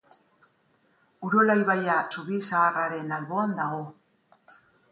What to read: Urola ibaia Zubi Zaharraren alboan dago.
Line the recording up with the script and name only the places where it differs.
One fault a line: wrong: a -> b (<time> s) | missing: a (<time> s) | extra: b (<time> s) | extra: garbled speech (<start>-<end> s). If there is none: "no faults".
no faults